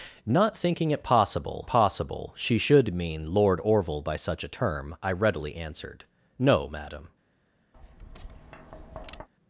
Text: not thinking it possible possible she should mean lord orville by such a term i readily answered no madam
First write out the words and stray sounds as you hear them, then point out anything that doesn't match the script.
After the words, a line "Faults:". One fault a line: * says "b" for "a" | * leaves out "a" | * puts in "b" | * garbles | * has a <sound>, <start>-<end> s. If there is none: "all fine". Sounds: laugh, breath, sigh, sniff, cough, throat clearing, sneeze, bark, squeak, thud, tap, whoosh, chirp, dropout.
not thinking it possible possible she should mean lord orville by such a term i readily answered no madam
Faults:
* has a tap, 7.7-9.3 s